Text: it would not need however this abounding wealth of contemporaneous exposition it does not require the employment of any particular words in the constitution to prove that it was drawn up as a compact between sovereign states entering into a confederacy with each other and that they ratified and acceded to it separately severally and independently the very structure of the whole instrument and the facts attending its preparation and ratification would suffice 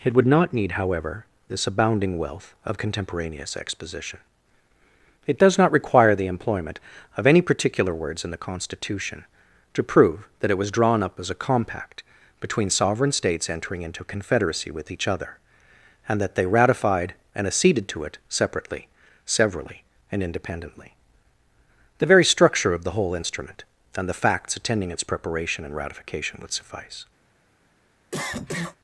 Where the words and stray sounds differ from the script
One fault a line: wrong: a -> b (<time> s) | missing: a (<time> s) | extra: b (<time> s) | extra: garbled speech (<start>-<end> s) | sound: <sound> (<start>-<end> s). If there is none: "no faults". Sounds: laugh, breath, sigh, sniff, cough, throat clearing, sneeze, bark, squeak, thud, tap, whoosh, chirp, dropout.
missing: a (14.0 s)
sound: cough (28.1-28.8 s)